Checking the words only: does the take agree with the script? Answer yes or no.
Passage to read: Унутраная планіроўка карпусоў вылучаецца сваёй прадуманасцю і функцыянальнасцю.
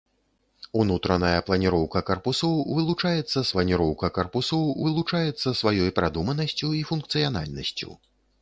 no